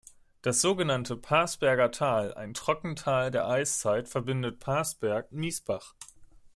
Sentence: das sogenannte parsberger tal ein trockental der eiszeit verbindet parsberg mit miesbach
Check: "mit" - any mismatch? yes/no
yes